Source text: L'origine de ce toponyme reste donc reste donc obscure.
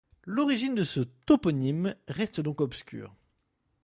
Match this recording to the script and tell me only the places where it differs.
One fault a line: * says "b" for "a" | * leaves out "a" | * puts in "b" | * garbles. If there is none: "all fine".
* leaves out "reste donc"